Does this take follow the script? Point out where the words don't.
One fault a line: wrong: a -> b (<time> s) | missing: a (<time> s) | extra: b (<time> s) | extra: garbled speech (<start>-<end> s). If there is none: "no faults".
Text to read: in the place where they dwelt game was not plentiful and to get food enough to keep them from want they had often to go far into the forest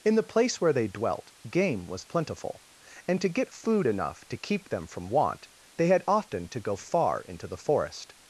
missing: not (2.1 s)